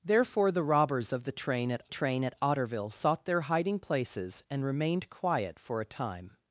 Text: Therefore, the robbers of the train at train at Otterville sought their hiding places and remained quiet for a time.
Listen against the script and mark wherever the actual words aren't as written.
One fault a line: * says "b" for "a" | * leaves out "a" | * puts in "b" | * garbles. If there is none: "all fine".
all fine